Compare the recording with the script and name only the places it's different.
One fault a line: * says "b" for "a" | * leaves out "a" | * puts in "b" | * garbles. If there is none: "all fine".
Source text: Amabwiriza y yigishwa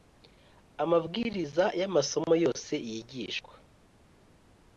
* puts in "amasomo yose"